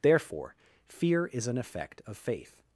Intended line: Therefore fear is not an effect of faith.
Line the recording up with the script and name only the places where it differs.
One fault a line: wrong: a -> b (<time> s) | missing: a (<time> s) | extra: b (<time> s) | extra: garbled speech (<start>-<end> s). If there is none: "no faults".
missing: not (1.5 s)